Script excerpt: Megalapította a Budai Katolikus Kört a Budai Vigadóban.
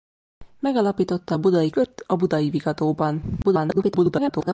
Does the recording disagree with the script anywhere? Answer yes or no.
yes